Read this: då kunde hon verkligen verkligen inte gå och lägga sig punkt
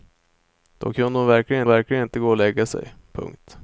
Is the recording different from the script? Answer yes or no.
no